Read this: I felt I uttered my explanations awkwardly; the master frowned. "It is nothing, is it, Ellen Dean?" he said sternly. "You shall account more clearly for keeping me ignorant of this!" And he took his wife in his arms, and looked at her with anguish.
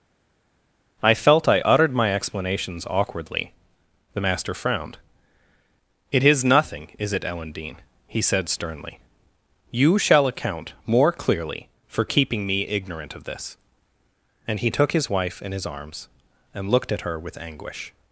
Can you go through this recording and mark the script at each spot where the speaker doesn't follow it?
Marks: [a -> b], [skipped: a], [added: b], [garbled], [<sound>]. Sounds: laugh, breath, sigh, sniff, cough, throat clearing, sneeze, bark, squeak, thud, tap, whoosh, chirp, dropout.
I felt I uttered my explanations awkwardly; the master frowned. "It is nothing, is it, Ellen Dean?" he said sternly. "You shall account more clearly for keeping me ignorant of this!" And he took his wife in his arms, and looked at her with anguish.